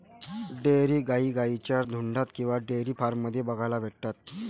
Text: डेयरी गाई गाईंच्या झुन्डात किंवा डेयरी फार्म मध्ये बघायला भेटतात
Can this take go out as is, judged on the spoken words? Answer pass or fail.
pass